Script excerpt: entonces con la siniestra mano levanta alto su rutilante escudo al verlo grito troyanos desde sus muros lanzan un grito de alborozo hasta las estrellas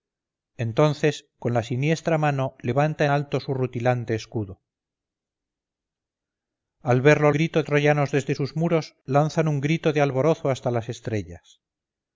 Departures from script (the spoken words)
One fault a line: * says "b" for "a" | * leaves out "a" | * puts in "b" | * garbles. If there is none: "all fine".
all fine